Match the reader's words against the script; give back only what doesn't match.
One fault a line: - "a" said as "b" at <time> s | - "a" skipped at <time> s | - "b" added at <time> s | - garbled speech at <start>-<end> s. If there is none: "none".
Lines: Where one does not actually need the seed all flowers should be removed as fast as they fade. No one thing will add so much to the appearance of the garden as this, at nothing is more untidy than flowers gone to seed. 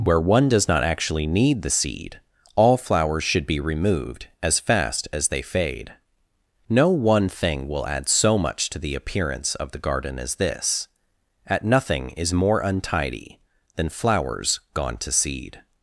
none